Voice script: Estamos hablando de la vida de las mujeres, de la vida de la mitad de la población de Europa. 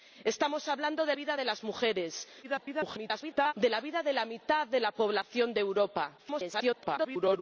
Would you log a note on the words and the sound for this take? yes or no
yes